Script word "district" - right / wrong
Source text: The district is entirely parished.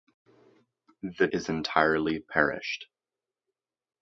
wrong